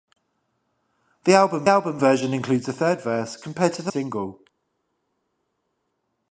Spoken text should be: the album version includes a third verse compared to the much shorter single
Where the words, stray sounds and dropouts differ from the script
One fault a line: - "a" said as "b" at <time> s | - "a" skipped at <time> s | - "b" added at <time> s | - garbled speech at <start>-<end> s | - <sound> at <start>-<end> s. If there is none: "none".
- "album" added at 1.7 s
- "much shorter" skipped at 3.9 s